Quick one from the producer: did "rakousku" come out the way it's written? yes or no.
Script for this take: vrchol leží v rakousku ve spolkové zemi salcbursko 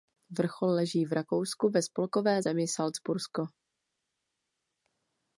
yes